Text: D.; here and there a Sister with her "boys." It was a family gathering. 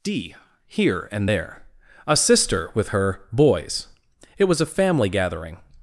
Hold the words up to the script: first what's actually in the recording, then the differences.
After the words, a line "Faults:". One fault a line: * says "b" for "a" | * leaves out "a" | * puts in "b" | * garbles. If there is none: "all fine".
D.; here and there a Sister with her "boys." It was a family gathering.
Faults:
all fine